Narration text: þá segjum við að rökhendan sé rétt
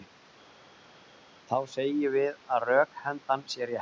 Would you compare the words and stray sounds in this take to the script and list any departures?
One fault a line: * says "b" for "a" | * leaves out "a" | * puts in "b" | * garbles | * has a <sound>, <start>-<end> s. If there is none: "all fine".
all fine